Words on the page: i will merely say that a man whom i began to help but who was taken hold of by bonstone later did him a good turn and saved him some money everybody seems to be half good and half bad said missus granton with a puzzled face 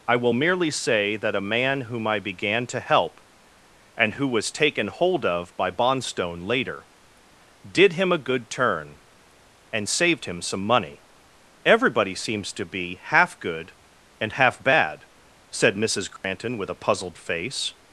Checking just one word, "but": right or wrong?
wrong